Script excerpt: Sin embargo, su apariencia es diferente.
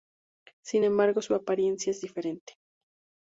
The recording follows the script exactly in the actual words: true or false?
true